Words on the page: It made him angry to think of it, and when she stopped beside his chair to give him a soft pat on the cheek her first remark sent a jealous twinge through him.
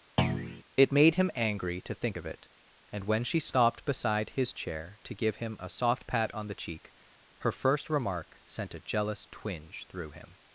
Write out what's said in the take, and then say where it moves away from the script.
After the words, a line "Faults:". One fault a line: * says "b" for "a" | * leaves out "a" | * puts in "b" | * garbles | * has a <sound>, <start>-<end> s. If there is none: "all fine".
It made him angry to think of it, and when she stopped beside his chair to give him a soft pat on the cheek her first remark sent a jealous twinge through him.
Faults:
* has a thud, 0.2-0.6 s